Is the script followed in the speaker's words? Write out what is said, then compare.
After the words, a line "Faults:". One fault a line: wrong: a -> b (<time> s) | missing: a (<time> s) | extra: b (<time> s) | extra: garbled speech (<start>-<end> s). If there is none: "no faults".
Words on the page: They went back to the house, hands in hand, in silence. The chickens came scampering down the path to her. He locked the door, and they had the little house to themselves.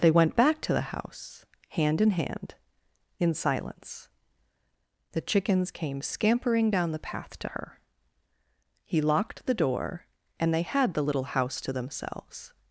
They went back to the house, hand in hand, in silence. The chickens came scampering down the path to her. He locked the door, and they had the little house to themselves.
Faults:
wrong: hands -> hand (1.7 s)